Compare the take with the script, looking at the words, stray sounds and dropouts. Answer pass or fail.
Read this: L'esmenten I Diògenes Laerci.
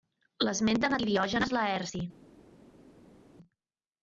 pass